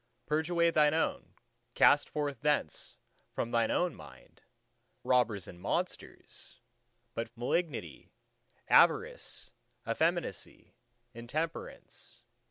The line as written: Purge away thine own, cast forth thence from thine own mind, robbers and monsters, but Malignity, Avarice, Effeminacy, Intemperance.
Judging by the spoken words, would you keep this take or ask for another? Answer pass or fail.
pass